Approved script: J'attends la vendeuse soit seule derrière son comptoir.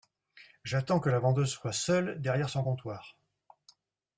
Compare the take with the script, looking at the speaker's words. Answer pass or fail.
fail